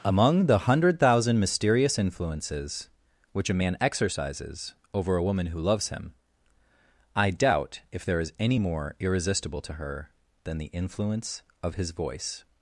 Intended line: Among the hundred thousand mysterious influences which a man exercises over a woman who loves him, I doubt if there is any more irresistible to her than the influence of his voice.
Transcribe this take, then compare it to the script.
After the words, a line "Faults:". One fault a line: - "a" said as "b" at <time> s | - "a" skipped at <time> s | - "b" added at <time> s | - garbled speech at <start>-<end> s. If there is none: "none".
Among the hundred thousand mysterious influences which a man exercises over a woman who loves him, I doubt if there is any more irresistible to her than the influence of his voice.
Faults:
none